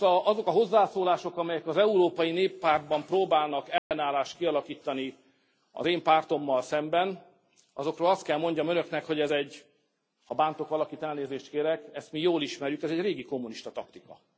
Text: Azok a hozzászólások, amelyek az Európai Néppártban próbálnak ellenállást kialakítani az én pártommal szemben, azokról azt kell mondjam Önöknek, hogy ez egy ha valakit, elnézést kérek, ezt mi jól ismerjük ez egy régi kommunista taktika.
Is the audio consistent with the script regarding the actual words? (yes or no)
no